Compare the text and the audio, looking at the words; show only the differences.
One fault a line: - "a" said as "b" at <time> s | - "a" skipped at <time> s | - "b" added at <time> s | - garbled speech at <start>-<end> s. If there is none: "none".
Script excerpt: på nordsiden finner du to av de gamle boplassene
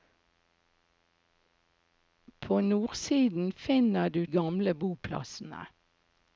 - "to av de" skipped at 4.3 s